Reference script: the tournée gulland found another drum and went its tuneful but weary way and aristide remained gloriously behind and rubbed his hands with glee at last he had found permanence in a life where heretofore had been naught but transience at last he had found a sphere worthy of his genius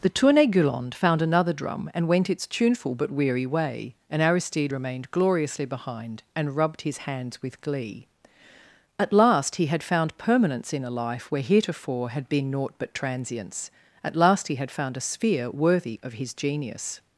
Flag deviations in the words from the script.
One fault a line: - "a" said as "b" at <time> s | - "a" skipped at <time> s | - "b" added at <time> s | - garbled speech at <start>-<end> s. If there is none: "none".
none